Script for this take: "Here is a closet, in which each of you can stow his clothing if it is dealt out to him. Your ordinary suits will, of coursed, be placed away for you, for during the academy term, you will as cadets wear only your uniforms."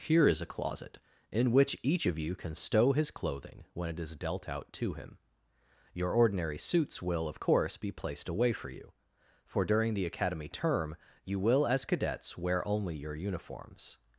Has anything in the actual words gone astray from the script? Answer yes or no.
yes